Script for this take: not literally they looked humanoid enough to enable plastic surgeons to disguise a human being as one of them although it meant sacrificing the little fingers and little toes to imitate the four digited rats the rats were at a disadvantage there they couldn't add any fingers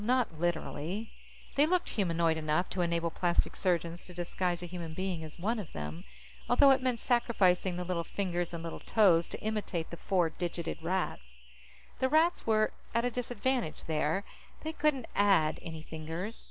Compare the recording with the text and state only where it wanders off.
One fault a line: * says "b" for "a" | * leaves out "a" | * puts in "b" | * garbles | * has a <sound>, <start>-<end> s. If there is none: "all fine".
all fine